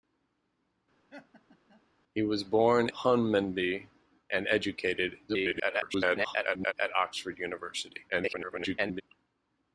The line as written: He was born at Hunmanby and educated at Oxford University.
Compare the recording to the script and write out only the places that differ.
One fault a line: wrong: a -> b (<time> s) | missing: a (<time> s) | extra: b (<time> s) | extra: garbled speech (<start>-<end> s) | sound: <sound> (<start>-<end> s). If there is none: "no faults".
sound: laugh (1.1-1.8 s)
missing: at (2.9 s)
extra: garbled speech (5.3-6.7 s)
extra: garbled speech (8.1-9.0 s)